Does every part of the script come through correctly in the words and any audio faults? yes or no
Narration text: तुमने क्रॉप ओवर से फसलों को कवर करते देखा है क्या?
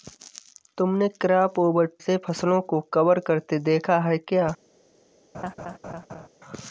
no